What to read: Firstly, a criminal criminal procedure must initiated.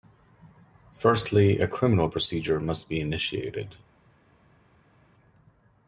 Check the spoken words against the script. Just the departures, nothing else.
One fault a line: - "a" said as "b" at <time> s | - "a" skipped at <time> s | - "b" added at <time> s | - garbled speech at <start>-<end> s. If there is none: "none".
- "criminal" skipped at 2.1 s
- "be" added at 2.9 s